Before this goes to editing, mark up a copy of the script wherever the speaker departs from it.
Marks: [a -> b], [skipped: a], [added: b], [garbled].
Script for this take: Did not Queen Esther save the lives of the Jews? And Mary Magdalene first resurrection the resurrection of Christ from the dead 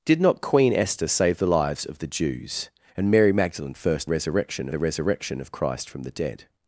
Did not Queen Esther save the lives of the Jews? And Mary Magdalene first resurrection the resurrection of Christ from the dead